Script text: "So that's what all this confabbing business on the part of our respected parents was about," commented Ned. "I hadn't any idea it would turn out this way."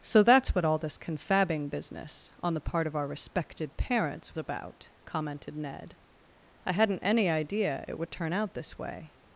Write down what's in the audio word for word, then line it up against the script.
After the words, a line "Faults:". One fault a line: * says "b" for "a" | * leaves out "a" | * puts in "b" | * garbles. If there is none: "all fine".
"So that's what all this confabbing business on the part of our respected parents about," commented Ned. "I hadn't any idea it would turn out this way."
Faults:
* leaves out "was"